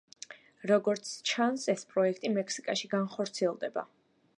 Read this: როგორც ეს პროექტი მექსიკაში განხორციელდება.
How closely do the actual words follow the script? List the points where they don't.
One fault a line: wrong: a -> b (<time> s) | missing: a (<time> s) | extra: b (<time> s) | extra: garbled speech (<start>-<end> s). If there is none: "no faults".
extra: ჩანს (1.3 s)